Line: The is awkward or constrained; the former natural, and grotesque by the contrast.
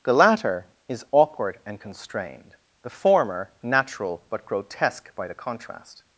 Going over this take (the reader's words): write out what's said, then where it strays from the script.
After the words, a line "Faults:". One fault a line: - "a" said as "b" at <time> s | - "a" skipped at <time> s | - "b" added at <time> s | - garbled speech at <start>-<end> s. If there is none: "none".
The latter is awkward and constrained; the former natural, but grotesque by the contrast.
Faults:
- "latter" added at 0.1 s
- "or" said as "and" at 1.6 s
- "and" said as "but" at 4.3 s